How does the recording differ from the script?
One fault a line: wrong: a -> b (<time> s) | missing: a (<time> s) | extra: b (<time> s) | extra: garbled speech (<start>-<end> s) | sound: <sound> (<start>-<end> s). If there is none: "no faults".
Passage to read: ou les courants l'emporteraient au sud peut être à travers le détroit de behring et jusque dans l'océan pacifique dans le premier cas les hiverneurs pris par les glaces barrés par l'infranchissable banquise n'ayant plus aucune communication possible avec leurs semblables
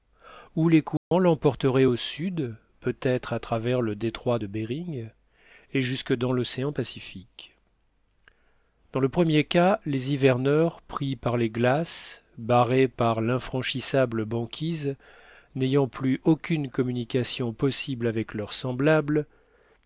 sound: dropout (1.0-1.1 s)